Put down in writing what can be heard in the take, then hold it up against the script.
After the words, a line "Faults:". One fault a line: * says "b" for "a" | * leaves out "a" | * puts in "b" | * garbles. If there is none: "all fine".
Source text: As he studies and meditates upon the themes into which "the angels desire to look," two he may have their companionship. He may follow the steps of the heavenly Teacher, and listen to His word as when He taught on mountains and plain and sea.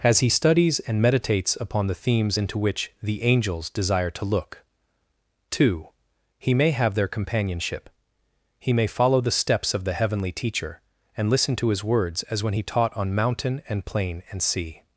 As he studies and meditates upon the themes into which "the angels desire to look," two he may have their companionship. He may follow the steps of the heavenly Teacher, and listen to His words as when He taught on mountain and plain and sea.
Faults:
* says "words" for "word"
* says "mountain" for "mountains"